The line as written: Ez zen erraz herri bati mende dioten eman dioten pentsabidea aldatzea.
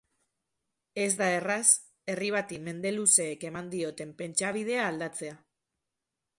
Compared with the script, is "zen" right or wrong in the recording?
wrong